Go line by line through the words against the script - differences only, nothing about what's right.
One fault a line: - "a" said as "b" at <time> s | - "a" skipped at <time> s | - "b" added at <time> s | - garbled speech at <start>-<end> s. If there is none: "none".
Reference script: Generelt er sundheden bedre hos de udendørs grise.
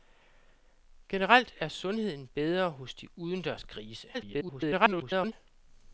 - garbled speech at 4.1-5.3 s